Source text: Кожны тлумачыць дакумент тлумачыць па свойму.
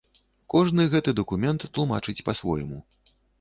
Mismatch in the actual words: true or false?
true